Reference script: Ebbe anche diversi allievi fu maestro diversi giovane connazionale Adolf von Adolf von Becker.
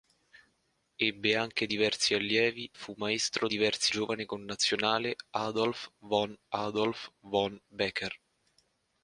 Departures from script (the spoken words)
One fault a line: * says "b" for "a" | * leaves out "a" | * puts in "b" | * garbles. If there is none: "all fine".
all fine